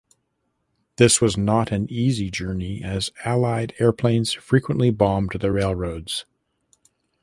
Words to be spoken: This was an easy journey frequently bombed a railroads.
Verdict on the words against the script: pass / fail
fail